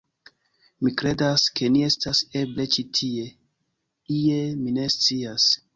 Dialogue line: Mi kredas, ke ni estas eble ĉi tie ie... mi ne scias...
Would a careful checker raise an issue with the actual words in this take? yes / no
no